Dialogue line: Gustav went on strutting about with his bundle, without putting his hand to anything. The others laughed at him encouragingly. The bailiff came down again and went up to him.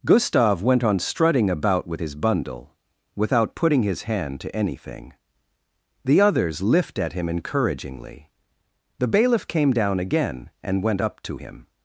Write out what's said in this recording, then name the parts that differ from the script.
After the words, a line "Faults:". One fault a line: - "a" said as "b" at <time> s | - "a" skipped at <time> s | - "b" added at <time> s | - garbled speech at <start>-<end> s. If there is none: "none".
Gustav went on strutting about with his bundle, without putting his hand to anything. The others lift at him encouragingly. The bailiff came down again and went up to him.
Faults:
- "laughed" said as "lift" at 6.6 s